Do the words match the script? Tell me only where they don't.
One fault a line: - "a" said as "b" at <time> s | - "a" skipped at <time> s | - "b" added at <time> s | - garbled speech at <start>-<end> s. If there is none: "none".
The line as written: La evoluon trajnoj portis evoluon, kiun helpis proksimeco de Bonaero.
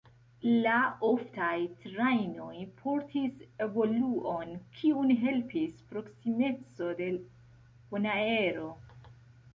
- "evoluon" said as "oftaj" at 1.1 s